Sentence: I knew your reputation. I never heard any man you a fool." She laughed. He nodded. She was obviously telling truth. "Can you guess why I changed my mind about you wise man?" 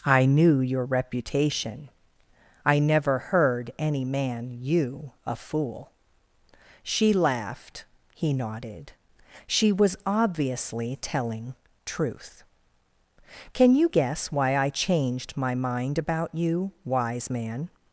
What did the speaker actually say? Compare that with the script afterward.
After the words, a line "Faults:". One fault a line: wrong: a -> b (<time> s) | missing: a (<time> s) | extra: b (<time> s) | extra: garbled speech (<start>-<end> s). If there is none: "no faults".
I knew your reputation. I never heard any man you a fool." She laughed. He nodded. She was obviously telling truth. "Can you guess why I changed my mind about you wise man?"
Faults:
no faults